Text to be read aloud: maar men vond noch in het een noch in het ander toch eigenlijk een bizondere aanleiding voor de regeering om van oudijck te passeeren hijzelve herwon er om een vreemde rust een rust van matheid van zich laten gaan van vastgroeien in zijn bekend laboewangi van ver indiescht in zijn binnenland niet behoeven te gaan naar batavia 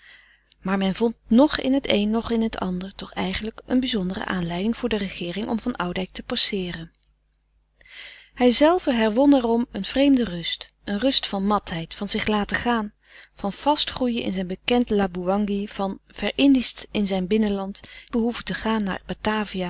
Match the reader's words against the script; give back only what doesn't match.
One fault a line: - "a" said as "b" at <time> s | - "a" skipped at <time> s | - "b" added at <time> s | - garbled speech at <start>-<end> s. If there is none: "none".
- "niet" skipped at 17.8 s